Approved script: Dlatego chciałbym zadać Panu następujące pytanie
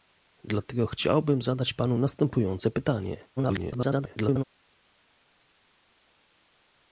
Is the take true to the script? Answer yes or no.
no